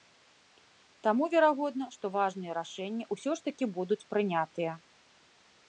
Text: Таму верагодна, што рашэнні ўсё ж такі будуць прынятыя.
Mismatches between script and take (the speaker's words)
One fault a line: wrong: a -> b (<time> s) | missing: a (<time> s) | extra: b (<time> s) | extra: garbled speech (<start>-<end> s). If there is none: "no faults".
extra: важныя (2.2 s)